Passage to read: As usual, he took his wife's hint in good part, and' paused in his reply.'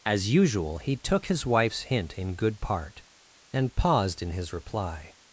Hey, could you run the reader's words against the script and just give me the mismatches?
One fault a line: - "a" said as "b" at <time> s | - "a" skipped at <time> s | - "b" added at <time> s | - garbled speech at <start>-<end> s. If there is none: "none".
none